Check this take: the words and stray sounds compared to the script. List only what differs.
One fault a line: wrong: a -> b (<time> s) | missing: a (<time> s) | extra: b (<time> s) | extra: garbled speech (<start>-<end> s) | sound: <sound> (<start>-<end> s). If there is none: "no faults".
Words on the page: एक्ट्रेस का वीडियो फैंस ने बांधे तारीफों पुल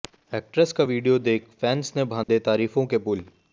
extra: देख (1.2 s)
sound: dropout (2.2-2.3 s)
extra: के (2.9 s)